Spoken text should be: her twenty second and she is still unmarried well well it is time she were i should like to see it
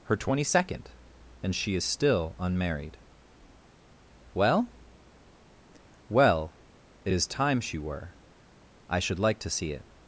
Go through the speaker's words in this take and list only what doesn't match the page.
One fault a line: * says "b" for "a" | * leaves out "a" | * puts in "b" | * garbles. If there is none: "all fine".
all fine